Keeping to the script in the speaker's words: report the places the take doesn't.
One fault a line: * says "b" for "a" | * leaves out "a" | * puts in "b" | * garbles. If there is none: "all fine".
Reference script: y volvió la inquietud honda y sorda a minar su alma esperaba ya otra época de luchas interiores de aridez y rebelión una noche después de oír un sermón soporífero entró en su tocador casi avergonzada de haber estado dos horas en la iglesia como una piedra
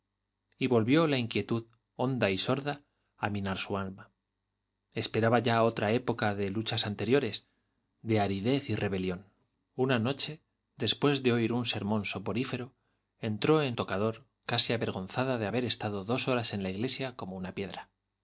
* leaves out "su"